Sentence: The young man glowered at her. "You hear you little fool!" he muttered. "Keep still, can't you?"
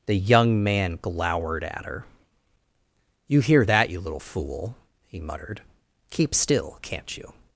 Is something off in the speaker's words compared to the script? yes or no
yes